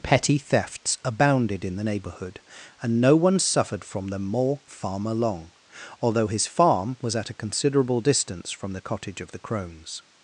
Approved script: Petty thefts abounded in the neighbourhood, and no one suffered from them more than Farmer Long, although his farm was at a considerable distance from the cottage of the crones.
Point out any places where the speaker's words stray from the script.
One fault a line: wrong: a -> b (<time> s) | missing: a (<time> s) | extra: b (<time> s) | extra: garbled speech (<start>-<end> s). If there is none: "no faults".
missing: than (4.6 s)